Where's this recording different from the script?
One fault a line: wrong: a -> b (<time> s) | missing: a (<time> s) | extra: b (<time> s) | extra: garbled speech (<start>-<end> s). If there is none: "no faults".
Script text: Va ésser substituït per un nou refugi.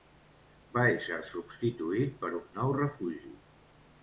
no faults